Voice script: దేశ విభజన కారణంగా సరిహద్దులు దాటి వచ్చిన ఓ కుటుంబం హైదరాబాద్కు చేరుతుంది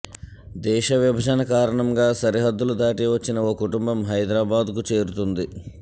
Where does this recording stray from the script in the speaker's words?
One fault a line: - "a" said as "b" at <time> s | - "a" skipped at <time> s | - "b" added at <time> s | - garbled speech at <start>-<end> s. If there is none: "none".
none